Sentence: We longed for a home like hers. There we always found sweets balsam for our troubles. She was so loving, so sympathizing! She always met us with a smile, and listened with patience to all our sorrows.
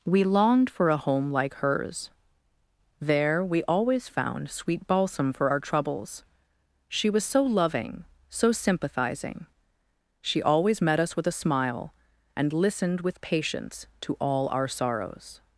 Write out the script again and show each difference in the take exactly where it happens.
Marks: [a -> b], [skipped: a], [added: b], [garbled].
We longed for a home like hers. There we always found [sweets -> sweet] balsam for our troubles. She was so loving, so sympathizing! She always met us with a smile, and listened with patience to all our sorrows.